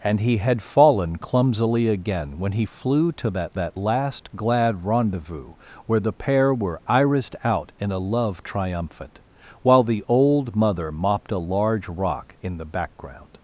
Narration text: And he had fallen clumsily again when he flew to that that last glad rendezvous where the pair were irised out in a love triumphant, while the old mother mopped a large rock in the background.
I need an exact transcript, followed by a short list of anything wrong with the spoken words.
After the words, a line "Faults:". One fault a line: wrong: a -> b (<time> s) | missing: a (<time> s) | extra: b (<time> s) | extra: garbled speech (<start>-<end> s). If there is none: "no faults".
And he had fallen clumsily again when he flew to that that last glad rendezvous where the pair were irised out in a love triumphant, while the old mother mopped a large rock in the background.
Faults:
no faults